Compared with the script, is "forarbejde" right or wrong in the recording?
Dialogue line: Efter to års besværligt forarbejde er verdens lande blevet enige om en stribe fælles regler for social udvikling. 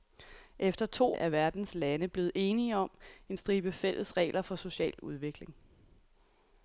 wrong